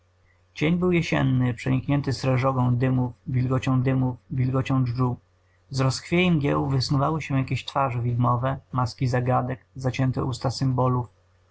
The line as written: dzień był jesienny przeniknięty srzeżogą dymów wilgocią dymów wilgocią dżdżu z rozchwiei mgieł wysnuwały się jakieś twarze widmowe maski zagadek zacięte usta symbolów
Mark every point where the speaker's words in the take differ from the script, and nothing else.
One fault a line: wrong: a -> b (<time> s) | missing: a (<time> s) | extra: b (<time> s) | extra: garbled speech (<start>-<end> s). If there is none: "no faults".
no faults